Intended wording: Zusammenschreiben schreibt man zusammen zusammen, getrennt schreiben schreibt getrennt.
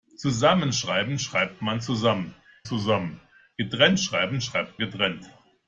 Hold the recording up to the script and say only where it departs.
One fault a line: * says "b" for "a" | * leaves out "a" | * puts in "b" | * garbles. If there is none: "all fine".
all fine